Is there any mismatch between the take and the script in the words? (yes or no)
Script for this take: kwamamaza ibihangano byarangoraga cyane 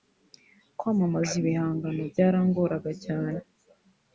no